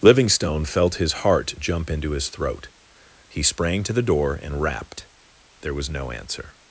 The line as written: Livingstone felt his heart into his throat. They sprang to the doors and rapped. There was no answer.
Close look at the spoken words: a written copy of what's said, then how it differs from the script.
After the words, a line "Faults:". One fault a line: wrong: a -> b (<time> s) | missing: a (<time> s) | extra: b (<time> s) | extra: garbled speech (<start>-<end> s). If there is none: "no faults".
Livingstone felt his heart jump into his throat. He sprang to the door and rapped. There was no answer.
Faults:
extra: jump (1.6 s)
wrong: They -> He (3.3 s)
wrong: doors -> door (4.0 s)